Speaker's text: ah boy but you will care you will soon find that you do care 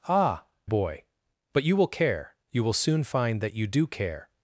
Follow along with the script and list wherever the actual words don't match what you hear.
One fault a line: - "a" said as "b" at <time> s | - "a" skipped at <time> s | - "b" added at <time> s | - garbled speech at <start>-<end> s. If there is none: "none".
none